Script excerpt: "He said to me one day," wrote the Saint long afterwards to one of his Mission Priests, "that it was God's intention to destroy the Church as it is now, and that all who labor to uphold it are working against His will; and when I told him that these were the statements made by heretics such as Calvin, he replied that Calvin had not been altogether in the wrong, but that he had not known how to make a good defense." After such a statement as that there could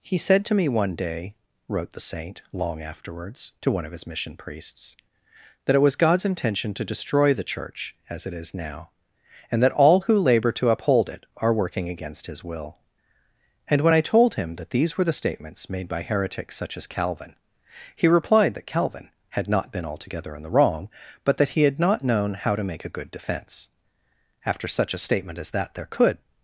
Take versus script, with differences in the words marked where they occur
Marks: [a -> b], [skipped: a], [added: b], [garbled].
"He said to me one day," wrote the Saint long afterwards to one of his Mission Priests, "that it was God's intention to destroy the Church as it is now, and that all who labor to uphold it are working against His will; and when I told him that these were the statements made by heretics such as Calvin, he replied that Calvin had not been altogether in the wrong, but that he had not known how to make a good defense." After such a statement as that there could